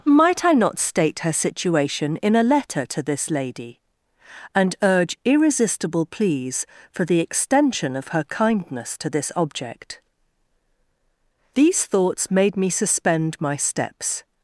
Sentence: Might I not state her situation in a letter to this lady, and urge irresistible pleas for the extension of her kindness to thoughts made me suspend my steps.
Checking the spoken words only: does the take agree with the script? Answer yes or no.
no